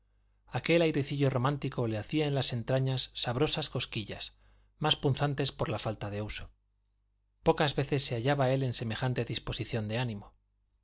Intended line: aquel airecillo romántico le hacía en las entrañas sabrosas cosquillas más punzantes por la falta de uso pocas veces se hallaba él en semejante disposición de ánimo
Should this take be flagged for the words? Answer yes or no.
no